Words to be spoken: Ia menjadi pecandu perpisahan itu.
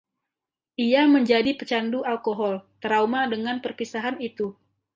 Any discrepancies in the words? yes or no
yes